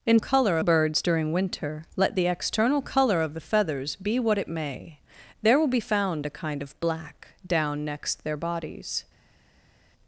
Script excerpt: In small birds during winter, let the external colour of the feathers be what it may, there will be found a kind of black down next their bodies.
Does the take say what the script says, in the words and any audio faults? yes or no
no